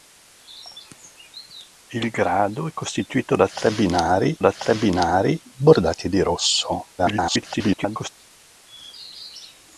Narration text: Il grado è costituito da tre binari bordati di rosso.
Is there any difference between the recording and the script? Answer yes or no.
yes